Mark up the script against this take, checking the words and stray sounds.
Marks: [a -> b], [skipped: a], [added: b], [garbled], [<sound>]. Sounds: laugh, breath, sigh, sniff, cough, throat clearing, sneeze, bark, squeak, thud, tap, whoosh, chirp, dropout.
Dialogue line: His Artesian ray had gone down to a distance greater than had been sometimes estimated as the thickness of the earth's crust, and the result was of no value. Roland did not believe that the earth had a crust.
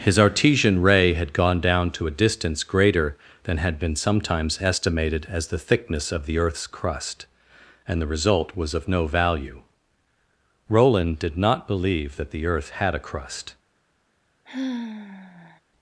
His Artesian ray had gone down to a distance greater than had been sometimes estimated as the thickness of the earth's crust, and the result was of no value. Roland did not believe that the earth had a crust. [sigh]